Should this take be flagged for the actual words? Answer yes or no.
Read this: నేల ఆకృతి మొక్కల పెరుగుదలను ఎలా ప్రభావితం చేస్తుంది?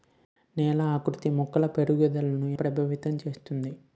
yes